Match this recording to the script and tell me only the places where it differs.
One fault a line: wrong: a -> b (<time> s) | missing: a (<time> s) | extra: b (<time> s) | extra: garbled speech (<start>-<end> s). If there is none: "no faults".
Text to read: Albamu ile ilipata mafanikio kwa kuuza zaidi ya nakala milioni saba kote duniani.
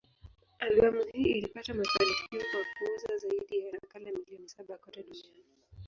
wrong: ile -> hii (1.1 s)